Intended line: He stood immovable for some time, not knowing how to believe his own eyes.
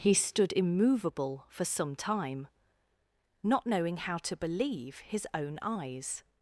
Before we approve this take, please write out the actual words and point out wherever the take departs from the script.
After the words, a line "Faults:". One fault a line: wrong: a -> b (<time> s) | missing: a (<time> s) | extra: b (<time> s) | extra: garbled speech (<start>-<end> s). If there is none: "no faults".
He stood immovable for some time, not knowing how to believe his own eyes.
Faults:
no faults